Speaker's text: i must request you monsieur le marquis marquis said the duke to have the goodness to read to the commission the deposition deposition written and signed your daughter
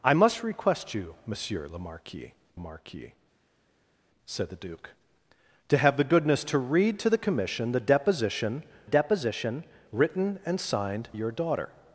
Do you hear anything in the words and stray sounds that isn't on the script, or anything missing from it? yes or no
no